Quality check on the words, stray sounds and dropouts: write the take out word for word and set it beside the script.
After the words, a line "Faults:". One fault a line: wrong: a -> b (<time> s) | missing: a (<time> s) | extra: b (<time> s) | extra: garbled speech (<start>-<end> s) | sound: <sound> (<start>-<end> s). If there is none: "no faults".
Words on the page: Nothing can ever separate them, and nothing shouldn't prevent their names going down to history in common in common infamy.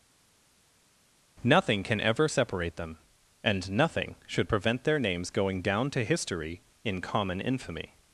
Nothing can ever separate them, and nothing should prevent their names going down to history in common infamy.
Faults:
wrong: shouldn't -> should (4.3 s)
missing: in common (7.4 s)